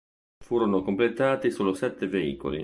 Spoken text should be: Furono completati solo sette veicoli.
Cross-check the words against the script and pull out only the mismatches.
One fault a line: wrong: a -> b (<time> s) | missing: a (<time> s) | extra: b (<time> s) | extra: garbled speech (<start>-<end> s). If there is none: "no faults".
no faults